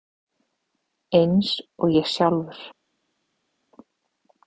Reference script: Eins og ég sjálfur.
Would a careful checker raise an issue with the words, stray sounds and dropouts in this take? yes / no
no